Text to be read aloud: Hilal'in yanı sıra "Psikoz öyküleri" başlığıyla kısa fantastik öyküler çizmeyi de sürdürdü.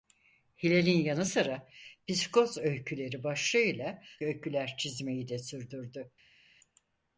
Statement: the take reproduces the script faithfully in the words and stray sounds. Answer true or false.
false